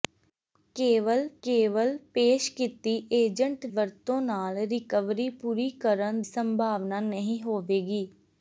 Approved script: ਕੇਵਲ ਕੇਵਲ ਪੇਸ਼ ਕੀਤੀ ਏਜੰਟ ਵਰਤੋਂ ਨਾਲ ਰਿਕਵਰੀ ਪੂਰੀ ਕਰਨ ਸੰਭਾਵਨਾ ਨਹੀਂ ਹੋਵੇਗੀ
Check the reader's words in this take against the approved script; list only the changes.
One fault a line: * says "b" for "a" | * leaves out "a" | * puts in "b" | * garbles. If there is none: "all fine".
all fine